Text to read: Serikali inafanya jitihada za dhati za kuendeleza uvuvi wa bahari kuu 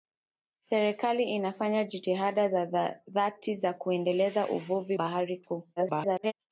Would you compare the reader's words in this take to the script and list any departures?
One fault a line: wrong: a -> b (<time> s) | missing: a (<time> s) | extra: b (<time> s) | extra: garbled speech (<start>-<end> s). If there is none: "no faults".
missing: wa (5.0 s)
extra: garbled speech (5.8-6.3 s)